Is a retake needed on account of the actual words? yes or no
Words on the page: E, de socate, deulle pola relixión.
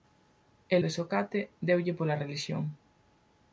no